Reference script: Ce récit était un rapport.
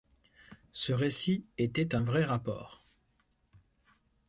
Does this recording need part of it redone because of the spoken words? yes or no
yes